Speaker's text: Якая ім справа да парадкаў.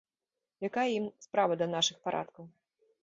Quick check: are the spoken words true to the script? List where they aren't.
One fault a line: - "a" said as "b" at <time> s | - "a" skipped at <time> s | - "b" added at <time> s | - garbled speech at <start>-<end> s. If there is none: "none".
- "нашых" added at 1.7 s